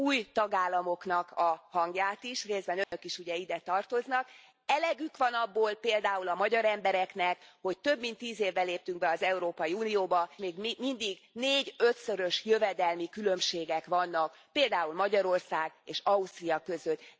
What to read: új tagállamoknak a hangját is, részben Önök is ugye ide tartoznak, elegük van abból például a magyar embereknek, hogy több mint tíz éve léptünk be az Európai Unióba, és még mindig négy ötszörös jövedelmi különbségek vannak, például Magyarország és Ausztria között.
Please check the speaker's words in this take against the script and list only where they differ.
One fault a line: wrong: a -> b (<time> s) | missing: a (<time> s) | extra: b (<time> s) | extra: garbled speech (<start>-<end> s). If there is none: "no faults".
missing: és (10.3 s)